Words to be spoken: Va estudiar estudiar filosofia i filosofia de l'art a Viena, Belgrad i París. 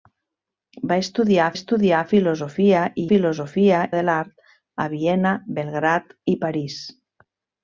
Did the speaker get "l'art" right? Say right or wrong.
right